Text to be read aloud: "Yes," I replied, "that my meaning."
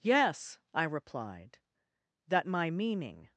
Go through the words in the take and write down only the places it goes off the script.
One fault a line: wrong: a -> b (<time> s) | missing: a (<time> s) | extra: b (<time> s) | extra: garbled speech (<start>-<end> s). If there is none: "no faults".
no faults